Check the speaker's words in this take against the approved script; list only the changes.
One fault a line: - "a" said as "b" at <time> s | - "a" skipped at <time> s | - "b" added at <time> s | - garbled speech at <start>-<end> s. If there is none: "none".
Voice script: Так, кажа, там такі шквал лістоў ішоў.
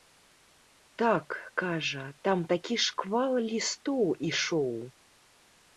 none